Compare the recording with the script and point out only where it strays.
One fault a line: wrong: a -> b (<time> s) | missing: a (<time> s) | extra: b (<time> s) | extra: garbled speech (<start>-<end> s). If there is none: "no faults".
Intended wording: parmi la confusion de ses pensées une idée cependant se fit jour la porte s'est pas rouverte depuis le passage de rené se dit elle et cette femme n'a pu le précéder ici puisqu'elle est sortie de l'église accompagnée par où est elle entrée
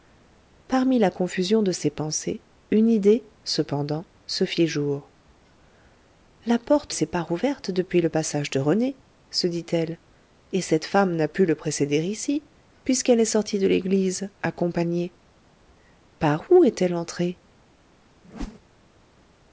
no faults